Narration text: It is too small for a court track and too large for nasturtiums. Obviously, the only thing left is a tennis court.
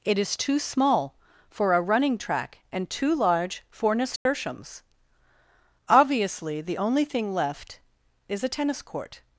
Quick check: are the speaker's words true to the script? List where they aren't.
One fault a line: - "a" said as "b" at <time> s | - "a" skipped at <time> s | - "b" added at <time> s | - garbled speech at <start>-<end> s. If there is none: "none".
- "court" said as "running" at 1.8 s